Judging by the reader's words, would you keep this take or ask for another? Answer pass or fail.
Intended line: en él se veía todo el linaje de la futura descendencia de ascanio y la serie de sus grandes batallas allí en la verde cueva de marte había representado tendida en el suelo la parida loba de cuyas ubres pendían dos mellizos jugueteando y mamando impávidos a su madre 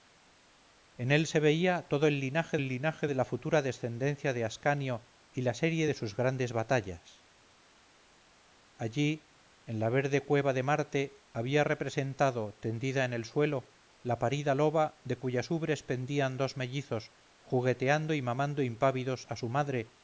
fail